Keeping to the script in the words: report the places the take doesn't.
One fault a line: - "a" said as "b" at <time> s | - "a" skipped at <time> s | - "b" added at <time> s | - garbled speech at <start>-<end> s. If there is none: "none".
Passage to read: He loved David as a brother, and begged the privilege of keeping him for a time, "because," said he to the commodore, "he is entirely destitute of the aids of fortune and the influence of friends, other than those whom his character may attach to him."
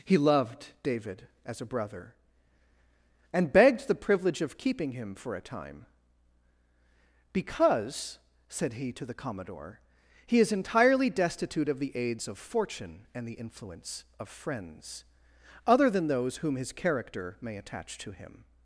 none